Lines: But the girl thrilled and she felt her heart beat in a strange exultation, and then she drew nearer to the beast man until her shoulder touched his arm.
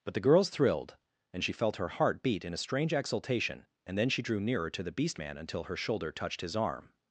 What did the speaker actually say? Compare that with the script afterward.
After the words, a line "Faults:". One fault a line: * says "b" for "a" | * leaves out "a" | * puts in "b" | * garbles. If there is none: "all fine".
But the girls thrilled and she felt her heart beat in a strange exultation, and then she drew nearer to the beast man until her shoulder touched his arm.
Faults:
* says "girls" for "girl"